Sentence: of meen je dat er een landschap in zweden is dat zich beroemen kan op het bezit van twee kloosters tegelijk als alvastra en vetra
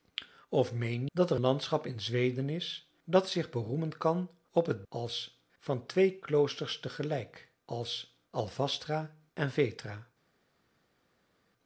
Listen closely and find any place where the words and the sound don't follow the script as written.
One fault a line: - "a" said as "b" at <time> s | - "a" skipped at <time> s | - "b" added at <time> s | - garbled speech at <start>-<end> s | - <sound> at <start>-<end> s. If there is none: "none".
- "je" skipped at 1.1 s
- "een" skipped at 1.4 s
- "bezit" said as "als" at 4.9 s